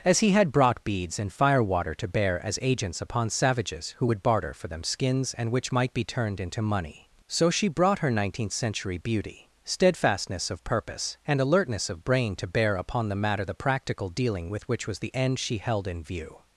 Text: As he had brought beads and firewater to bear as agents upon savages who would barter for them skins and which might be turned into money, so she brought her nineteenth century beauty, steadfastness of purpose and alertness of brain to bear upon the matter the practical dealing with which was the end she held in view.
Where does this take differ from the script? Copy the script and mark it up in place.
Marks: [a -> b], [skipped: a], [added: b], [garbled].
As he had brought beads and firewater to bear as agents upon savages who would barter for them skins and which might be turned into money, so she brought her nineteenth century beauty, steadfastness of purpose and alertness of brain to bear upon the matter the practical dealing with which was the end she held in view.